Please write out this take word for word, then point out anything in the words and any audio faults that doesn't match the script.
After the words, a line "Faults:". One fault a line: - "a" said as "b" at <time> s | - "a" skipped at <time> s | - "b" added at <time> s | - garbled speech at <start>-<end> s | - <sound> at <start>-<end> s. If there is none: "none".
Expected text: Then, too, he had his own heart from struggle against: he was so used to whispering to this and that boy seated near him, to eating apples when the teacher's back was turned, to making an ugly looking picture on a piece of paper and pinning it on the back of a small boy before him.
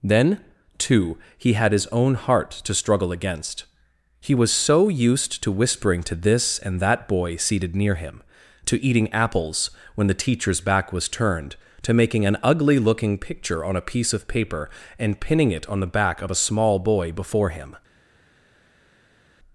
Then, too, he had his own heart to struggle against: he was so used to whispering to this and that boy seated near him, to eating apples when the teacher's back was turned, to making an ugly looking picture on a piece of paper and pinning it on the back of a small boy before him.
Faults:
- "from" said as "to" at 2.5 s